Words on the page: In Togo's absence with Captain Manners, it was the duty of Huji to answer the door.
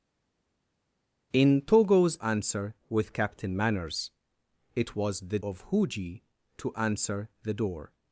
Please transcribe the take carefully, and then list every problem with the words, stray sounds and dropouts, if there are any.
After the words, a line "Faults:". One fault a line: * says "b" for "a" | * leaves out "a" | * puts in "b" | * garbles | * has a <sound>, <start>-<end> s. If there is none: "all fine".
In Togo's answer with Captain Manners, it was the of Huji to answer the door.
Faults:
* says "answer" for "absence"
* leaves out "duty"